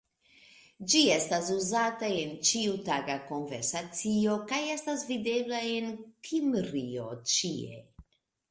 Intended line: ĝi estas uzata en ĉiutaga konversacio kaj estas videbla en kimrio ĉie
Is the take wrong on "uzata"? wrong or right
right